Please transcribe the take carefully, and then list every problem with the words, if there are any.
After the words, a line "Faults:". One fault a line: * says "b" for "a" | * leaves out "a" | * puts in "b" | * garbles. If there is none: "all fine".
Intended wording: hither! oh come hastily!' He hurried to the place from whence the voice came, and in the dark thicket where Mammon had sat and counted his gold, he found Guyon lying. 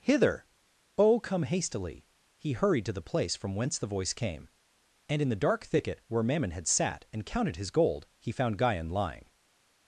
hither! oh come hastily!' He hurried to the place from whence the voice came, and in the dark thicket where Mammon had sat and counted his gold, he found Guyon lying.
Faults:
all fine